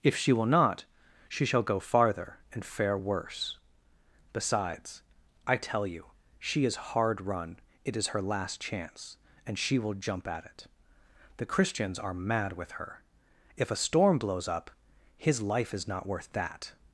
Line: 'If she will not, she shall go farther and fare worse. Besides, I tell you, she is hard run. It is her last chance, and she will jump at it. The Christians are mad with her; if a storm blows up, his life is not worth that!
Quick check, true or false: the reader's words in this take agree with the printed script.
true